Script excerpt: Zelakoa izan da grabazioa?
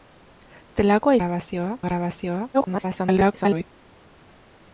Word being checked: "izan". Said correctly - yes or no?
no